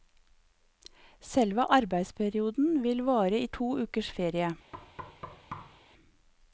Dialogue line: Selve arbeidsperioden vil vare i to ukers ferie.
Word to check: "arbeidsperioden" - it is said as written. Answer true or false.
true